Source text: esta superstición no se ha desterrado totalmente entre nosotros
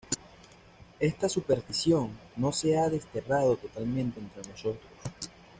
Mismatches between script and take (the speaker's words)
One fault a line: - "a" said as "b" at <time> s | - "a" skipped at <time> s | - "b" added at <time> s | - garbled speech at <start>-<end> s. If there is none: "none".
none